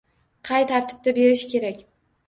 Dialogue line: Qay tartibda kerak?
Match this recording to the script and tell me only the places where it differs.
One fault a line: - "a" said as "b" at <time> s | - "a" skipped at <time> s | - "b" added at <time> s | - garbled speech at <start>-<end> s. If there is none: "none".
- "berish" added at 1.2 s